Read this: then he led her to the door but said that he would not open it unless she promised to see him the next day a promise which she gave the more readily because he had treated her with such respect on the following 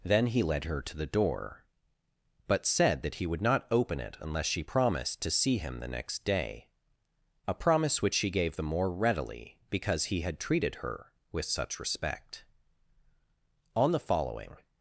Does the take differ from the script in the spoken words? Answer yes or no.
no